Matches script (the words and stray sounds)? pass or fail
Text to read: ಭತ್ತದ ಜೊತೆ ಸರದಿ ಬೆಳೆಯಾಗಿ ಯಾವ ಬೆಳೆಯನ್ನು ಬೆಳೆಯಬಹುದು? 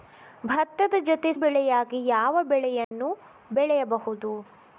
fail